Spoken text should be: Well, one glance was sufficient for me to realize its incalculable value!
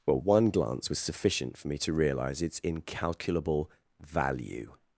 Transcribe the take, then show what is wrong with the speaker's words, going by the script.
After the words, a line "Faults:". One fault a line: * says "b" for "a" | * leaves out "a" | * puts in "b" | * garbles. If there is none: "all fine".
Well, one glance was sufficient for me to realize its incalculable value!
Faults:
all fine